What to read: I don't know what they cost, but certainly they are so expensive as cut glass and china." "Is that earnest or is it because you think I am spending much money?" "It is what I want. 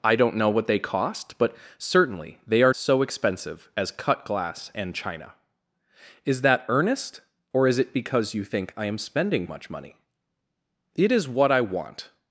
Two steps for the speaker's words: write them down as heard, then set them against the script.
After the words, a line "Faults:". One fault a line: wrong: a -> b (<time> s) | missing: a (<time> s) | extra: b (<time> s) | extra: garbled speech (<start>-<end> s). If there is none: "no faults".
I don't know what they cost, but certainly they are so expensive as cut glass and china." "Is that earnest or is it because you think I am spending much money?" "It is what I want.
Faults:
no faults